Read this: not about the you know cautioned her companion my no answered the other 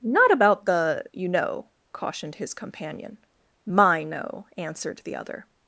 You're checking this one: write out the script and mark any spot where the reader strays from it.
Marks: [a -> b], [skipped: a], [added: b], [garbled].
not about the you know cautioned [her -> his] companion my no answered the other